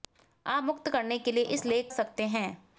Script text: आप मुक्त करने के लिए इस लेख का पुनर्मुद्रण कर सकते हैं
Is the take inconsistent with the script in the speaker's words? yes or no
yes